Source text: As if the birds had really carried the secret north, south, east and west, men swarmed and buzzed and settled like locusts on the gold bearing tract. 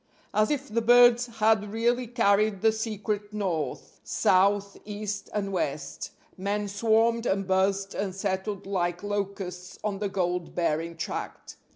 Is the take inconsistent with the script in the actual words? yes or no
no